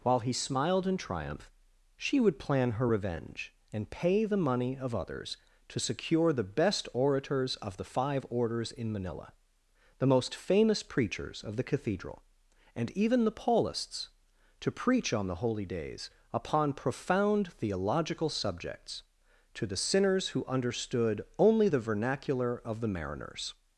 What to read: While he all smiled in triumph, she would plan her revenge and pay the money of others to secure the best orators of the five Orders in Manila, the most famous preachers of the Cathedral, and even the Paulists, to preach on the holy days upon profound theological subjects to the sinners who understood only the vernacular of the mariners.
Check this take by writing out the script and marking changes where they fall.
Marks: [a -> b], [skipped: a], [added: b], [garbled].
While he [skipped: all] smiled in triumph, she would plan her revenge and pay the money of others to secure the best orators of the five Orders in Manila, the most famous preachers of the Cathedral, and even the Paulists, to preach on the holy days upon profound theological subjects to the sinners who understood only the vernacular of the mariners.